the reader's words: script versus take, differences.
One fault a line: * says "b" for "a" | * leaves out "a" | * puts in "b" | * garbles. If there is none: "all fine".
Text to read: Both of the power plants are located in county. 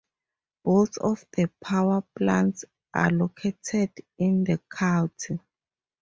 * puts in "the"